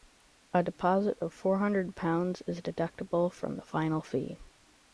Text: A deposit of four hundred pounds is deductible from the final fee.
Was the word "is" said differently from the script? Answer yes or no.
no